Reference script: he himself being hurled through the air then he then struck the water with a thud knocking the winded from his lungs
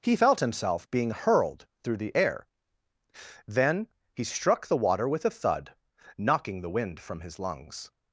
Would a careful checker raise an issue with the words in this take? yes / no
yes